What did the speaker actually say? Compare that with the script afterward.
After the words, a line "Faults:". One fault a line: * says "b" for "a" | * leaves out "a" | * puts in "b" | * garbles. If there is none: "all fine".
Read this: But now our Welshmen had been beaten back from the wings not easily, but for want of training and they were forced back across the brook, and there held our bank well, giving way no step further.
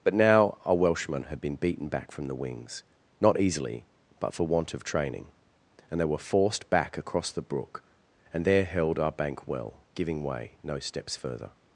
But now our Welshmen had been beaten back from the wings not easily, but for want of training and they were forced back across the brook, and there held our bank well, giving way no steps further.
Faults:
* says "steps" for "step"